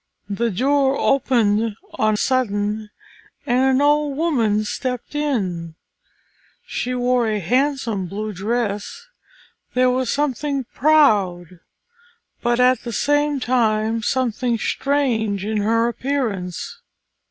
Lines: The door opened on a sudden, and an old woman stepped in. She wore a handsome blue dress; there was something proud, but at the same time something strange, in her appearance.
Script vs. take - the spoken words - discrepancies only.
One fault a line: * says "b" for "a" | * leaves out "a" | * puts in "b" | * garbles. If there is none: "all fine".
* leaves out "a"